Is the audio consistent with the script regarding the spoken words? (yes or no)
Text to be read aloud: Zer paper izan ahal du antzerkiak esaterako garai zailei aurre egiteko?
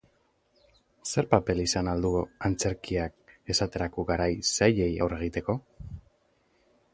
yes